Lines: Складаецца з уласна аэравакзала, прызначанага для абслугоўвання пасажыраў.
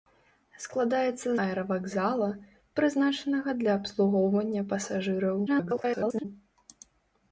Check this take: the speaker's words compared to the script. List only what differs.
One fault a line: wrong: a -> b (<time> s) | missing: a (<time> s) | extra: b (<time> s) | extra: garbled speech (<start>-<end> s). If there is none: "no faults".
missing: з уласна (1.3 s)
extra: garbled speech (5.5-6.2 s)